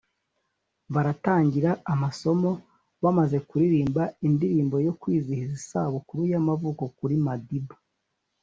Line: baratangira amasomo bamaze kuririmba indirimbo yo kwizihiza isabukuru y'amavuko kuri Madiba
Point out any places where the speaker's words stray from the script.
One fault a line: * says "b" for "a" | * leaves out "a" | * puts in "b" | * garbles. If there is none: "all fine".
all fine